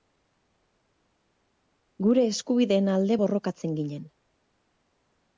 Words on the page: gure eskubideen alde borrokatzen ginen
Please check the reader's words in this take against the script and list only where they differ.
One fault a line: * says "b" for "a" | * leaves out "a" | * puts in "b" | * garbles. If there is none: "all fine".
all fine